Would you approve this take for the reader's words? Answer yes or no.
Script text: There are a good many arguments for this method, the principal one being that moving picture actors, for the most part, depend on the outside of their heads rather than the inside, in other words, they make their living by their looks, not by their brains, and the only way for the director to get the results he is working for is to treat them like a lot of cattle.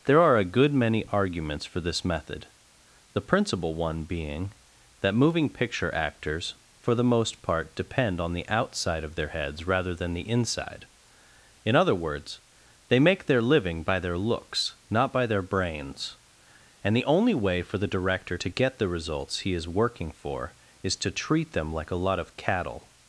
yes